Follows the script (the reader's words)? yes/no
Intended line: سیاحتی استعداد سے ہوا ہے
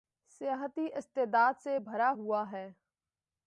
no